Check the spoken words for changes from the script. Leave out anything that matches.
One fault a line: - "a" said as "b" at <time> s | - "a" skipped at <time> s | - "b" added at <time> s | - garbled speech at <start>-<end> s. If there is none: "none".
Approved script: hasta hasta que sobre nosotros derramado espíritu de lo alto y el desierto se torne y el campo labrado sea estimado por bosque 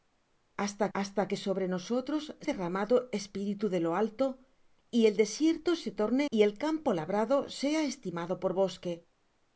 none